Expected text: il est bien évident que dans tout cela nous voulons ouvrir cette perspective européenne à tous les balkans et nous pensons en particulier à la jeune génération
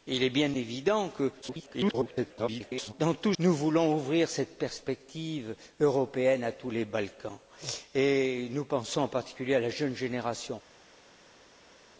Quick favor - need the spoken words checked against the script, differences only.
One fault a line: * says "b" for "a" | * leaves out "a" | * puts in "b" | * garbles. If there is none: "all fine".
* garbles
* leaves out "cela"